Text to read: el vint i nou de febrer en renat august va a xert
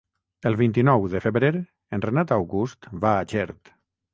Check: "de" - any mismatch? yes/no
no